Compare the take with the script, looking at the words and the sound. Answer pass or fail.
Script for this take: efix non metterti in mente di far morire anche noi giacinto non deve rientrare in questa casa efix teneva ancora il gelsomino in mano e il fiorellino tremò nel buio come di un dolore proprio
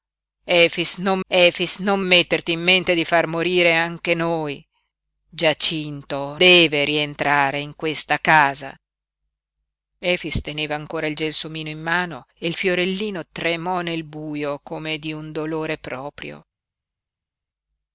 fail